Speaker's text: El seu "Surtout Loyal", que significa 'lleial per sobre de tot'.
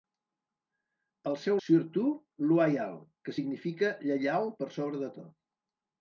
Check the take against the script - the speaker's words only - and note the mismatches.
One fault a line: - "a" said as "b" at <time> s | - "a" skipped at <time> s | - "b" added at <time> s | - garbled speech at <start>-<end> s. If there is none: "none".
none